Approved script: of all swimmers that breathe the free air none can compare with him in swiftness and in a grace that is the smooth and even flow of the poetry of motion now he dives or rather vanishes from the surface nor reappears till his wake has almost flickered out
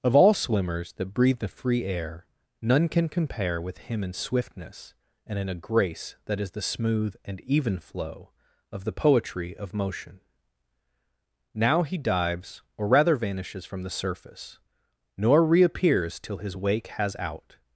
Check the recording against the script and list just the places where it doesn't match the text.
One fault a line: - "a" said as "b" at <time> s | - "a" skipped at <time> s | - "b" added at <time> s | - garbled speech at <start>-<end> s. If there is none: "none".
- "almost flickered" skipped at 17.2 s